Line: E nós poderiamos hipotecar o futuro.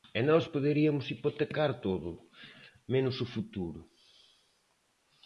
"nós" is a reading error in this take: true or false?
false